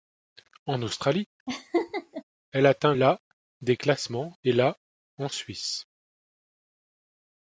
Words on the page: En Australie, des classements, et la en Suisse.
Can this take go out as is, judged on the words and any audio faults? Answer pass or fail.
fail